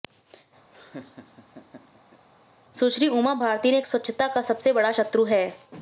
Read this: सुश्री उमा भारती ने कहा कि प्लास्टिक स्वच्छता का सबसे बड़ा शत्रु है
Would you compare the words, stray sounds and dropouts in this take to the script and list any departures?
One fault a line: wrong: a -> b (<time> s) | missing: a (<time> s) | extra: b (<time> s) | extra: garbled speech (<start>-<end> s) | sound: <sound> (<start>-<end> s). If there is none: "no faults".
sound: laugh (0.7-2.3 s)
missing: कहा कि प्लास्टिक (3.8 s)